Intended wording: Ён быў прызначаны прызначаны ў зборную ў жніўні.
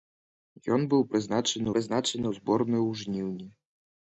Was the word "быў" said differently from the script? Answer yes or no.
no